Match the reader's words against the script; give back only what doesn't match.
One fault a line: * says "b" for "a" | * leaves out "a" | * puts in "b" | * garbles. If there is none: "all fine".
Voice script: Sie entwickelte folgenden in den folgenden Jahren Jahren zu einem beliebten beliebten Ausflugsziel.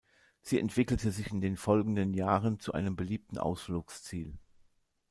* says "sich" for "folgenden"
* leaves out "Jahren"
* leaves out "beliebten"